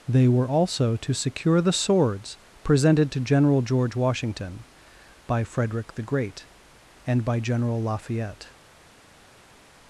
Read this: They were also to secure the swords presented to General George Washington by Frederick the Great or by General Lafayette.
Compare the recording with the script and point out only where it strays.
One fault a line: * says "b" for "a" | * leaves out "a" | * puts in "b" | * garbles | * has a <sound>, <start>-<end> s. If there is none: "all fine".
* says "and" for "or"